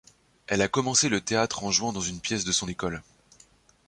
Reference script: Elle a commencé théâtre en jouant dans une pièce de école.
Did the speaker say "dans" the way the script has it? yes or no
yes